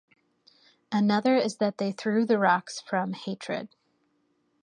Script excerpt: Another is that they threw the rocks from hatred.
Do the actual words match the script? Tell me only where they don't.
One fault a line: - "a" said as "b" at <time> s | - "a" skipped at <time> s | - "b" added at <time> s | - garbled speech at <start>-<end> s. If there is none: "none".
none